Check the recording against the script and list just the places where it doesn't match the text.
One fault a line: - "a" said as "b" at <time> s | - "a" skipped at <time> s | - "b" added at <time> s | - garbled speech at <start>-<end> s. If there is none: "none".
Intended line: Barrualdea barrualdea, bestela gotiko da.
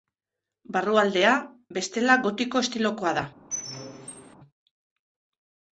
- "barrualdea" skipped at 1.3 s
- "estilokoa" added at 2.7 s